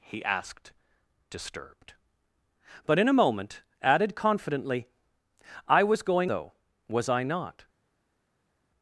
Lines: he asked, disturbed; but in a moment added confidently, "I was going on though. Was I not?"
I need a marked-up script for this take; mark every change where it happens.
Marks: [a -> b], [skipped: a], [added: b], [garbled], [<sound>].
he asked, disturbed; but in a moment added confidently, "I was going [skipped: on] though. Was I not?"